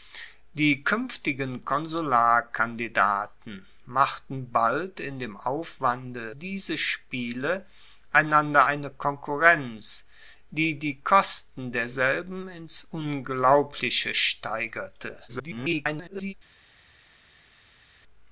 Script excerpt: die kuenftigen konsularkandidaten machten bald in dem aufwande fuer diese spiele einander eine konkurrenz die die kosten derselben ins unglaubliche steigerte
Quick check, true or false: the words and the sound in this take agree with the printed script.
false